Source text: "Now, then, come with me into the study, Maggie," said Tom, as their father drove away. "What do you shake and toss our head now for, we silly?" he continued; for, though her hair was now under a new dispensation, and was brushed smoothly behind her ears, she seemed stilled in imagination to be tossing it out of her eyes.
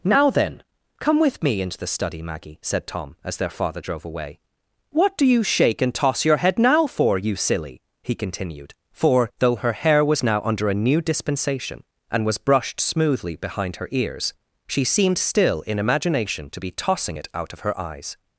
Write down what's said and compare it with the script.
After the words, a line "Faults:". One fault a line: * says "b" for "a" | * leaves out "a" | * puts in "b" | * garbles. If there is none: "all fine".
"Now, then, come with me into the study, Maggie," said Tom, as their father drove away. "What do you shake and toss your head now for, you silly?" he continued; for, though her hair was now under a new dispensation, and was brushed smoothly behind her ears, she seemed still in imagination to be tossing it out of her eyes.
Faults:
* says "your" for "our"
* says "you" for "we"
* says "still" for "stilled"